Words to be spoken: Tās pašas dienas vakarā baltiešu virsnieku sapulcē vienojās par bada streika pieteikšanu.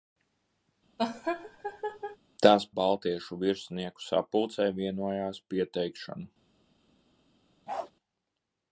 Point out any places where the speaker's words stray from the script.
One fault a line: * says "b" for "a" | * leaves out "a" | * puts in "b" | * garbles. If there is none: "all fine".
* leaves out "pašas dienas vakarā"
* leaves out "par bada streika"